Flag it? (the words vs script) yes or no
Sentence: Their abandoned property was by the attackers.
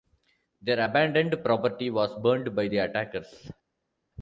yes